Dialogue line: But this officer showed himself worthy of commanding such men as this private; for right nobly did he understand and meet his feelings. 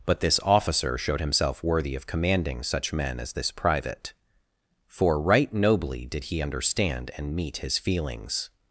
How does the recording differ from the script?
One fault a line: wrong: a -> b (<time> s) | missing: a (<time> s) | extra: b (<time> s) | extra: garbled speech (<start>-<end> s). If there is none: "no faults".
no faults